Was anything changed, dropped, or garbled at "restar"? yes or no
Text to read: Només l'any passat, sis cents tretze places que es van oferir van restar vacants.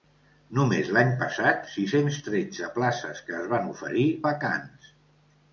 yes